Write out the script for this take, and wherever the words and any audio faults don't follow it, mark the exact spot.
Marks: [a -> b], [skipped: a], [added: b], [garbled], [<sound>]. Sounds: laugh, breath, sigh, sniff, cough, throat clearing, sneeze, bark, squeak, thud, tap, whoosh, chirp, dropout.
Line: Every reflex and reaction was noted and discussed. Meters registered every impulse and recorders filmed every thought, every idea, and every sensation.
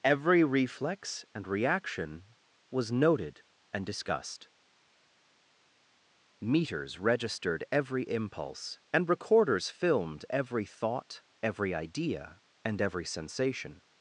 Every reflex and reaction was noted and discussed. Meters registered every impulse and recorders filmed every thought, every idea, and every sensation.